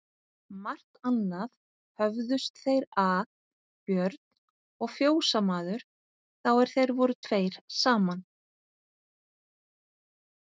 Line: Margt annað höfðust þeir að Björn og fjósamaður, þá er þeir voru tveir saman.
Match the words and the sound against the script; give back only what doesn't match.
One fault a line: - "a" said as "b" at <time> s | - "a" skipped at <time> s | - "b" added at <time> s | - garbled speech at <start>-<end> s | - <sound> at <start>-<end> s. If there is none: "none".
none